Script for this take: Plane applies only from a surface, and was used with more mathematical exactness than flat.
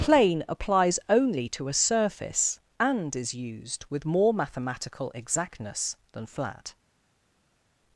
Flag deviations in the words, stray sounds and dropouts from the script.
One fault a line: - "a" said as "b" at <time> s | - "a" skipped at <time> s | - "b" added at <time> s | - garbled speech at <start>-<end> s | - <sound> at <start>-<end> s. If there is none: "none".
- "from" said as "to" at 1.5 s
- "was" said as "is" at 3.2 s